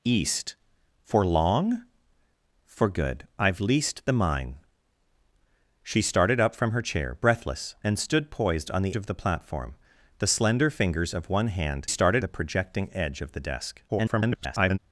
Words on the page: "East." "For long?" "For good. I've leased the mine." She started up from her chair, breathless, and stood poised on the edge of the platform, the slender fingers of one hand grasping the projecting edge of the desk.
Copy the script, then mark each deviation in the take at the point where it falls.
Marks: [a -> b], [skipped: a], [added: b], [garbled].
"East." "For long?" "For good. I've leased the mine." She started up from her chair, breathless, and stood poised on the [skipped: edge] of the platform, the slender fingers of one hand [grasping -> started] the projecting edge of the desk. [garbled]